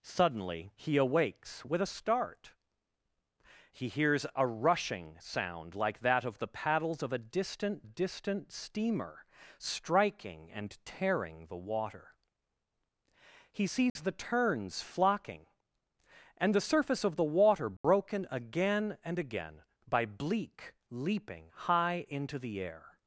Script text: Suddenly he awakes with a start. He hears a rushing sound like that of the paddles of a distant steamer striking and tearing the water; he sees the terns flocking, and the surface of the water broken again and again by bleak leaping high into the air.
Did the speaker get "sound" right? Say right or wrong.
right